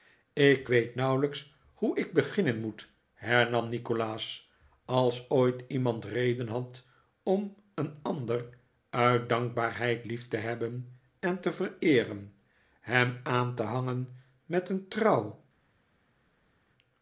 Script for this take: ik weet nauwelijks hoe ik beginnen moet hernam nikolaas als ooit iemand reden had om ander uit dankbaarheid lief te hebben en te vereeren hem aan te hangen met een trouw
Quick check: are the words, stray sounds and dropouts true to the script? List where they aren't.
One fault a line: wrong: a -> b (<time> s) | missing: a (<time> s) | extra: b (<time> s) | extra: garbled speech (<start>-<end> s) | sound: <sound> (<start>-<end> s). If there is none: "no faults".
extra: een (7.7 s)